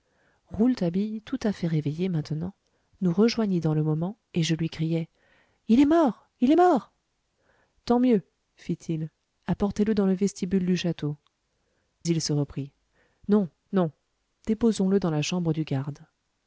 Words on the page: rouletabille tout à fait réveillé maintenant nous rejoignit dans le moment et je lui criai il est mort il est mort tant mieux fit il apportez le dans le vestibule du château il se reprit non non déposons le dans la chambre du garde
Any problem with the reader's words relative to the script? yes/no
no